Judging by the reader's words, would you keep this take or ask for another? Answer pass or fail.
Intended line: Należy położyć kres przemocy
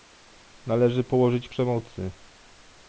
fail